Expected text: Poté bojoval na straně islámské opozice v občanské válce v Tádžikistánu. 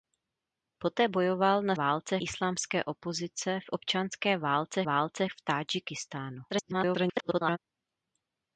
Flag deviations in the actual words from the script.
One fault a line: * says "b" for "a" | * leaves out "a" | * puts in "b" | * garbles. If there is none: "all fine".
* says "válce" for "straně"
* puts in "válce"
* garbles